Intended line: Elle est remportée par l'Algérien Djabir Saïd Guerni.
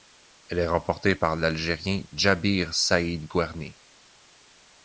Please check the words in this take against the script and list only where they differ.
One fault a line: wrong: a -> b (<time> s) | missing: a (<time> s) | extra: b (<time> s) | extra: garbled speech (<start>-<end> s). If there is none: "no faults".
no faults